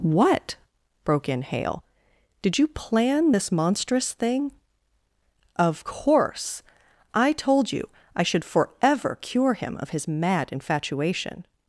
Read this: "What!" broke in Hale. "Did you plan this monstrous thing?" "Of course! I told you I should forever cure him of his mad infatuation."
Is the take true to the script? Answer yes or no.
yes